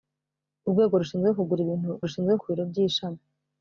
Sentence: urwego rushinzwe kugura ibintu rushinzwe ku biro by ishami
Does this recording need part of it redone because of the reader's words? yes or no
no